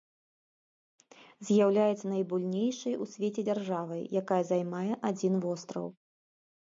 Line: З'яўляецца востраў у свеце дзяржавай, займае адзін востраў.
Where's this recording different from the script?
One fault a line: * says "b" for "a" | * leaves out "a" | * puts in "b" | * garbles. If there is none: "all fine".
* says "найбуйнейшай" for "востраў"
* puts in "якая"